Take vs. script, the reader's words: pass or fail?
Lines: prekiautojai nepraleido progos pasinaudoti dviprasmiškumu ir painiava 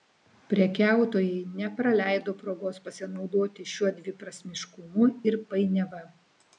fail